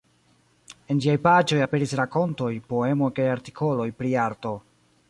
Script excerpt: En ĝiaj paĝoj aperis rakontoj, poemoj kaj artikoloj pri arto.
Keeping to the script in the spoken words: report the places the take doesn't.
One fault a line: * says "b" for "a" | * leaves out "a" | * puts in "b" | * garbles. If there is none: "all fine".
all fine